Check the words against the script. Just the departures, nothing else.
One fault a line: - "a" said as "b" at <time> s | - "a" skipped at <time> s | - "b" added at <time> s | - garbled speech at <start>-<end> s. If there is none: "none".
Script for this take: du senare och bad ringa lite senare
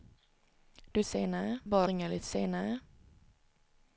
none